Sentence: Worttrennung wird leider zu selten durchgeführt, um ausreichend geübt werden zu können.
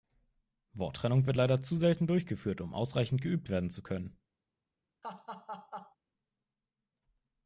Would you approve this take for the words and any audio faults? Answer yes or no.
no